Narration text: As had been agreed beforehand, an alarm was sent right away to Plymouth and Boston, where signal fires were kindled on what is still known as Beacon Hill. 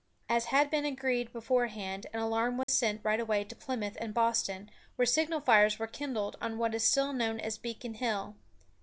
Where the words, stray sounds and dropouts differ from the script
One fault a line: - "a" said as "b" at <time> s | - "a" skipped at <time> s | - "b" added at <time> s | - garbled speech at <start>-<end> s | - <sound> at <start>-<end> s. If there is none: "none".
- dropout at 2.6-2.7 s